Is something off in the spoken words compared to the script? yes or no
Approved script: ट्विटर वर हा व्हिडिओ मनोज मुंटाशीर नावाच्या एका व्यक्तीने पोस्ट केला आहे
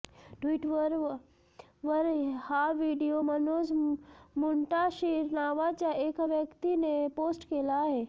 no